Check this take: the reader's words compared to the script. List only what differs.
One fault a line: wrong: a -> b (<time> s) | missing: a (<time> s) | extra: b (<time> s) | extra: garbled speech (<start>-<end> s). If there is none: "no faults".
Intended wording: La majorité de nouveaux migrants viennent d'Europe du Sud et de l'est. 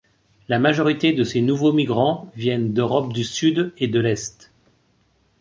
extra: ces (1.2 s)